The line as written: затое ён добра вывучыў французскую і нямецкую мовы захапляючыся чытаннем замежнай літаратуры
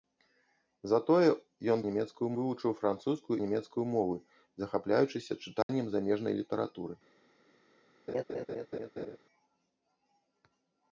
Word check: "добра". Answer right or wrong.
wrong